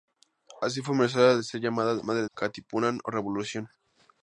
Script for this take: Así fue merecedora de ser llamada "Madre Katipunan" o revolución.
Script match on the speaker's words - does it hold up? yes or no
yes